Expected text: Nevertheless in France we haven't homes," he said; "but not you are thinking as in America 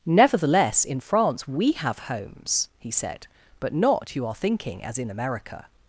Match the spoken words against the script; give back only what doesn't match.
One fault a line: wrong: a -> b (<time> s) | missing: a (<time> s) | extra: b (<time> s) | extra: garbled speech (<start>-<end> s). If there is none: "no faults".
wrong: haven't -> have (1.7 s)